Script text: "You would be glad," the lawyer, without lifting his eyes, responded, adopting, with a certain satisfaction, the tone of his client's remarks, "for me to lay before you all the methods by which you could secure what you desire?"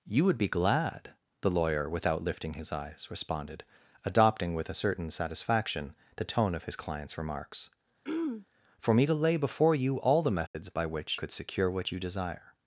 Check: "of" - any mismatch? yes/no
no